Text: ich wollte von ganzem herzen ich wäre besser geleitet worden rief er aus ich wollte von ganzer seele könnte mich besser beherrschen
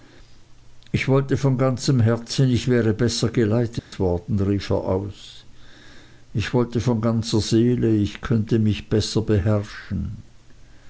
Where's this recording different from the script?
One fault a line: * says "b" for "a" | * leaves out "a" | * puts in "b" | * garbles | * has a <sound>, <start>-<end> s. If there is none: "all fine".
* has a dropout, 3.8-3.9 s
* puts in "ich"